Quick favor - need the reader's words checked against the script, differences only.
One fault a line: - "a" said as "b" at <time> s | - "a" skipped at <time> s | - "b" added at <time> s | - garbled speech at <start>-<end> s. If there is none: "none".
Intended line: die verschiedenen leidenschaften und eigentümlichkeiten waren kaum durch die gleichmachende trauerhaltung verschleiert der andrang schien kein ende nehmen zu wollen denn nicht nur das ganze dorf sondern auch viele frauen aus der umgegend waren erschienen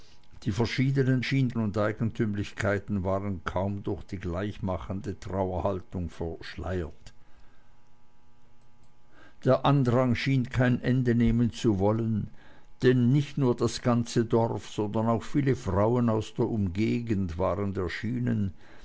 - "leidenschaften" said as "schien" at 1.2 s